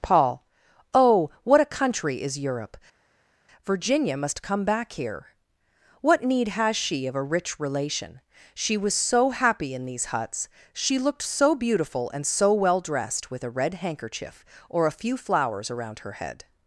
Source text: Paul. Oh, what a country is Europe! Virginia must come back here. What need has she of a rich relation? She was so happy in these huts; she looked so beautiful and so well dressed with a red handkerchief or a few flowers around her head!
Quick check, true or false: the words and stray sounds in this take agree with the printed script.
true